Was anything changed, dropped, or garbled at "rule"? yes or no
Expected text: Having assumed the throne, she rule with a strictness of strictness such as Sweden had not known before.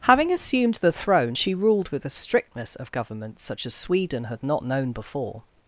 yes